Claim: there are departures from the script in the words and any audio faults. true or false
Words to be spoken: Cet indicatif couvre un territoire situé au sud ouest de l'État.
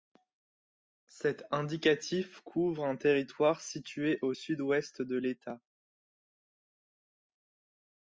false